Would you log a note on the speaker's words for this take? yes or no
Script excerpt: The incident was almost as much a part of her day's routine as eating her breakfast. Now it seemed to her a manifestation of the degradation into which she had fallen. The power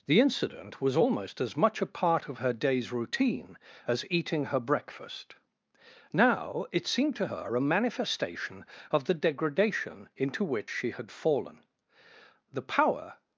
no